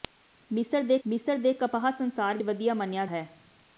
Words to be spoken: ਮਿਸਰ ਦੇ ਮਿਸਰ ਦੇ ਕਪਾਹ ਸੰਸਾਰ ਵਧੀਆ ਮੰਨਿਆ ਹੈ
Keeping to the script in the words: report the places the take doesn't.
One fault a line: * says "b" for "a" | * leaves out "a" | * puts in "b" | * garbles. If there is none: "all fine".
all fine